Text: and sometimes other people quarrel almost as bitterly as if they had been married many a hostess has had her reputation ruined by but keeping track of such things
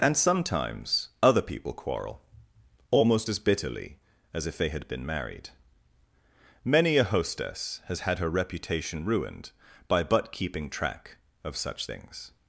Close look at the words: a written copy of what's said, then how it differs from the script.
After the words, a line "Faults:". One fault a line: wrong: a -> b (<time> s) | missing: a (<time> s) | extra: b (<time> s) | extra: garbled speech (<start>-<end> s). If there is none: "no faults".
and sometimes other people quarrel almost as bitterly as if they had been married many a hostess has had her reputation ruined by but keeping track of such things
Faults:
no faults